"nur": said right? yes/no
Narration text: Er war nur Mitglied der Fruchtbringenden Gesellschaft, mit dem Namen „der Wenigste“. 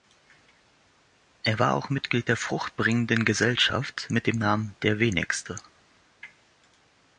no